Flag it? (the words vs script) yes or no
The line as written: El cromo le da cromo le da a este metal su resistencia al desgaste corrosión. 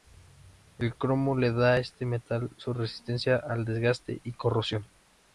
yes